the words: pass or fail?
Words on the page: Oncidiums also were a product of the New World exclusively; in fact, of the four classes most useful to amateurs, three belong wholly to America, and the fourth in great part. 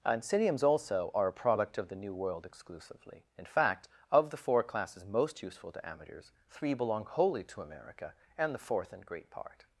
fail